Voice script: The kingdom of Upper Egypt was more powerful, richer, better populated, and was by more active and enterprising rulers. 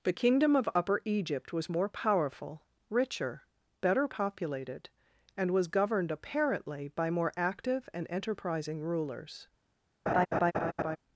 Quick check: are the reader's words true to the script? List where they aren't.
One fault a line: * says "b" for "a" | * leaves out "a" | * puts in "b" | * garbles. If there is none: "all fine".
* puts in "governed apparently"